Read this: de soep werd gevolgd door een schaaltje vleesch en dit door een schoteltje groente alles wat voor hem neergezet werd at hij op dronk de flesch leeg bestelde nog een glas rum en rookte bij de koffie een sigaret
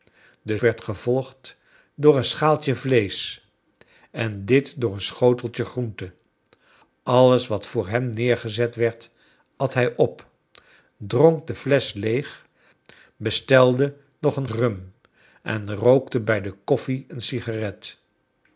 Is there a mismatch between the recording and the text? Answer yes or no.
yes